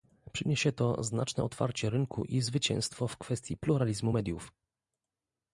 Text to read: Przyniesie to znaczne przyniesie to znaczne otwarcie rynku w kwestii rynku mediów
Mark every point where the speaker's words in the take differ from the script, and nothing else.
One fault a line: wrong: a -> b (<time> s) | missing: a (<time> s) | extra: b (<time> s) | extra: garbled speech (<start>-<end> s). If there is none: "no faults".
wrong: przyniesie to znaczne otwarcie rynku -> otwarcie rynku i zwycięstwo (1.4 s)
wrong: rynku -> pluralizmu (3.6 s)